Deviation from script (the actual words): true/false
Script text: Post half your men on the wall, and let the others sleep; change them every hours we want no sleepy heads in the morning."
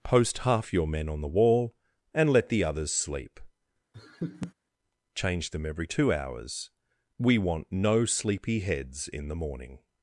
true